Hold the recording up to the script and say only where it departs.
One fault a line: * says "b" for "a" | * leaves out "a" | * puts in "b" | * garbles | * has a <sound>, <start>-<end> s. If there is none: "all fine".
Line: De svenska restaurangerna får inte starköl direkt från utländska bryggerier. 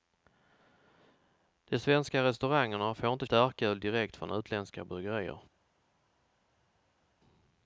all fine